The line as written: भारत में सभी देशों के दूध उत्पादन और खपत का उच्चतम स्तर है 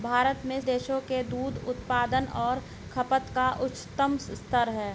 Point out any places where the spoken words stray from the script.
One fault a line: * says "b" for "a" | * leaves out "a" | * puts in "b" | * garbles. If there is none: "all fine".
* leaves out "सभी"